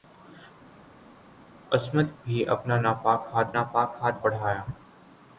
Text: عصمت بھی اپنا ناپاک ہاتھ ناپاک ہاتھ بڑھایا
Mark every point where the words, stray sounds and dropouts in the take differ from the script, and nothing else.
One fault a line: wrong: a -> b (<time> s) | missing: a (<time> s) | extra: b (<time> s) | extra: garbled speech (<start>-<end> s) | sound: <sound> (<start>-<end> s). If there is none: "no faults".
no faults